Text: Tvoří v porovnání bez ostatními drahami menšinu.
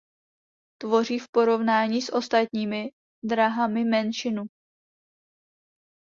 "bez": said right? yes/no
no